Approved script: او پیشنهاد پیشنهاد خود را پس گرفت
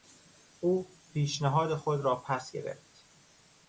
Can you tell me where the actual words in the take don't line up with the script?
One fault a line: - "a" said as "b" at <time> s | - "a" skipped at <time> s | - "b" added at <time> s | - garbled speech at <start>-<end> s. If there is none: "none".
- "پیشنهاد" skipped at 1.8 s